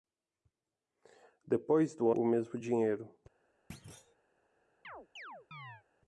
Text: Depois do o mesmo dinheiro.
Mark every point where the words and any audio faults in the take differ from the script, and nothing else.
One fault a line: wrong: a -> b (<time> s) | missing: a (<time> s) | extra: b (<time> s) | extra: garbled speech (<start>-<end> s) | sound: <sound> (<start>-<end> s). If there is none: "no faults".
sound: thud (3.7-4.2 s)
sound: chirp (4.8-5.8 s)